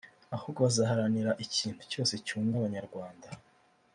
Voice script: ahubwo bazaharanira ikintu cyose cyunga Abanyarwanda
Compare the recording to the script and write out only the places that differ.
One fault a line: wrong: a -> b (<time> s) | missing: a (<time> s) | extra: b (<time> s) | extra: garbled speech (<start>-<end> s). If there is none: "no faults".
no faults